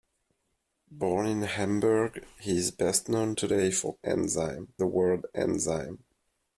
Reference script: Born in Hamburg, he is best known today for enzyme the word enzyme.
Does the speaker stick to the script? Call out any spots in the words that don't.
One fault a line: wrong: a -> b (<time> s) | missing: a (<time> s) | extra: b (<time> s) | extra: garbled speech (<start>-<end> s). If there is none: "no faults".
no faults